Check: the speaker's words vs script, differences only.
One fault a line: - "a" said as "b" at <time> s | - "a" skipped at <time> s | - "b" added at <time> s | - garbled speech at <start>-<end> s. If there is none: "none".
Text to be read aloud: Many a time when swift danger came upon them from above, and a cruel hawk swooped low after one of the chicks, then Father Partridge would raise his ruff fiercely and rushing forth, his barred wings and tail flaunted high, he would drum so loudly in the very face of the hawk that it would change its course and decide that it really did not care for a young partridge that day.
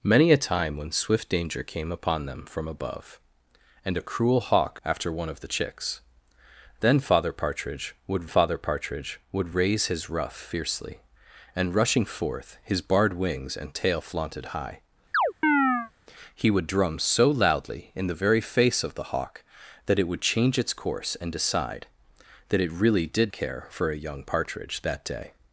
- "swooped low" skipped at 4.8 s
- "Father Partridge would" added at 8.2 s
- "not" skipped at 23.3 s